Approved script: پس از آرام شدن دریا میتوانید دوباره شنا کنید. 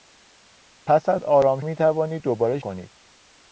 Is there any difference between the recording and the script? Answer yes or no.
yes